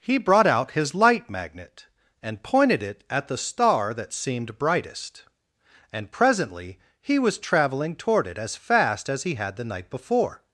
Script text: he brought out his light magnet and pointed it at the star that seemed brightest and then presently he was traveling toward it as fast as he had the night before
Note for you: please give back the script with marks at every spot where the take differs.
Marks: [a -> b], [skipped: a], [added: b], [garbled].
he brought out his light magnet and pointed it at the star that seemed brightest and [skipped: then] presently he was traveling toward it as fast as he had the night before